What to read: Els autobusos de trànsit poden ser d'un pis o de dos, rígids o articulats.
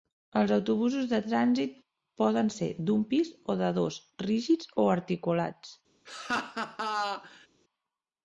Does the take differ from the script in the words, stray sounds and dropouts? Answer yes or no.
yes